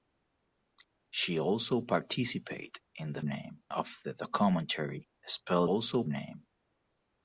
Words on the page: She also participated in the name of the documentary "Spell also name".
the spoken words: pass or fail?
pass